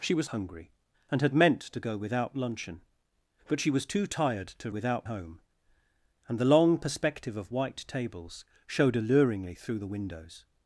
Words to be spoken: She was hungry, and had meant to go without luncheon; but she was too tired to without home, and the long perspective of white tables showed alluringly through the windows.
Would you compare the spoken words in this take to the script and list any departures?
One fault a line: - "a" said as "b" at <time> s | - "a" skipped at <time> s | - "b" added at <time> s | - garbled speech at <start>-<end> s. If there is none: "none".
none